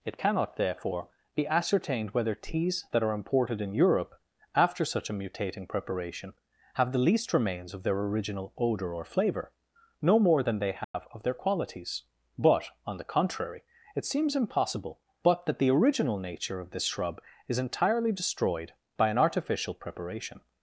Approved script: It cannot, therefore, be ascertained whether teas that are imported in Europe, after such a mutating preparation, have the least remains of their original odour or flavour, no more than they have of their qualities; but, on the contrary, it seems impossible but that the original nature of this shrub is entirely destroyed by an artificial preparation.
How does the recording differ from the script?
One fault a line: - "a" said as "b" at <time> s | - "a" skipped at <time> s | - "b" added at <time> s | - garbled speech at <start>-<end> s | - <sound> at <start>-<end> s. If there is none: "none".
- dropout at 10.8-10.9 s